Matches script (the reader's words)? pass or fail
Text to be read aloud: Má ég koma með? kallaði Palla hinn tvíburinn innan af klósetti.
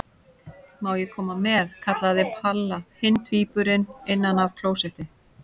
pass